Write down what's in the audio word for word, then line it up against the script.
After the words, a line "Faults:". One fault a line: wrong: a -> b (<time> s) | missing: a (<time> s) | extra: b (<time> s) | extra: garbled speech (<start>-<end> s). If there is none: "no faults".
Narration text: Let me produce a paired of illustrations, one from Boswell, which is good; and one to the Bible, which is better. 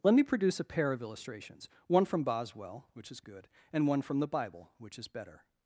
Let me produce a pair of illustrations, one from Boswell, which is good; and one from the Bible, which is better.
Faults:
wrong: paired -> pair (0.6 s)
wrong: to -> from (4.0 s)